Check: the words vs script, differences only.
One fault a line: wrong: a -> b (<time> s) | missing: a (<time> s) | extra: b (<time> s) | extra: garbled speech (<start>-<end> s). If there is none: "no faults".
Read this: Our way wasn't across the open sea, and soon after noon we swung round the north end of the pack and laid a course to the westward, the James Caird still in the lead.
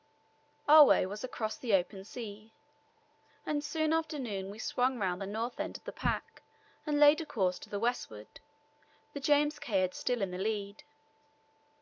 wrong: wasn't -> was (1.1 s)